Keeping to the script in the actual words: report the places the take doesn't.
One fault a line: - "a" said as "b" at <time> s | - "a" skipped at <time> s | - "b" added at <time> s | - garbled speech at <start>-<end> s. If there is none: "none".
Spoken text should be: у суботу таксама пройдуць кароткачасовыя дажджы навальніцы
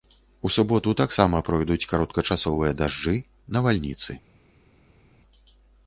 none